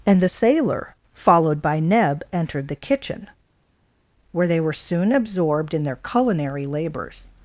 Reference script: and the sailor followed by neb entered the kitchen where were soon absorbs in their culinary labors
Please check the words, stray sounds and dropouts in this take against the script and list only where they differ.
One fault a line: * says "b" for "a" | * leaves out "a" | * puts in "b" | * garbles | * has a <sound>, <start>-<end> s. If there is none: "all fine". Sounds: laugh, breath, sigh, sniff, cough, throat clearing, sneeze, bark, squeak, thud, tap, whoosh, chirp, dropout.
* puts in "they"
* says "absorbed" for "absorbs"